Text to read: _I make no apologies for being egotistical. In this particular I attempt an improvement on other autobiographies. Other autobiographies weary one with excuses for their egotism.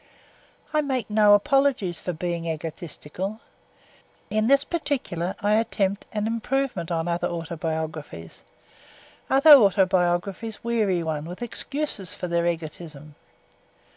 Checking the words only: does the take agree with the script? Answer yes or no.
yes